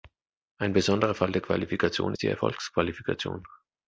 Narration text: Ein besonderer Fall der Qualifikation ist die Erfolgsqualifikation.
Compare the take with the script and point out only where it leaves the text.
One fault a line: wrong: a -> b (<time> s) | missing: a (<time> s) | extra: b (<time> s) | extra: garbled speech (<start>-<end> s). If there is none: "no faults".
no faults